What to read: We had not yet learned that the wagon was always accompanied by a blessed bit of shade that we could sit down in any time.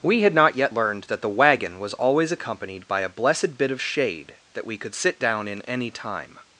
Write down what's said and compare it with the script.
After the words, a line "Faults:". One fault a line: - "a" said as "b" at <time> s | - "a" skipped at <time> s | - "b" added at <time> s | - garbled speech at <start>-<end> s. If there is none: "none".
We had not yet learned that the wagon was always accompanied by a blessed bit of shade that we could sit down in any time.
Faults:
none